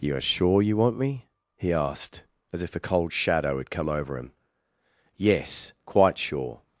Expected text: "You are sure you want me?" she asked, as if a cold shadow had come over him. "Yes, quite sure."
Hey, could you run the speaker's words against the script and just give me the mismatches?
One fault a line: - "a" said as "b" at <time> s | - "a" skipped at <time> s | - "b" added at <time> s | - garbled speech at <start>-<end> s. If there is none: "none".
- "she" said as "he" at 1.6 s